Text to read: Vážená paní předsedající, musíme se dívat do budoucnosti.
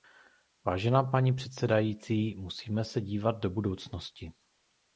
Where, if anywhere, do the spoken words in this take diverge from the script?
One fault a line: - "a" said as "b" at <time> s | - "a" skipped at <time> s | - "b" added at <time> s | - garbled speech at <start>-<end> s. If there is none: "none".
none